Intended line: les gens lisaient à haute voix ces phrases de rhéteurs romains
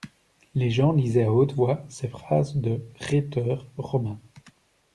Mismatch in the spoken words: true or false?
false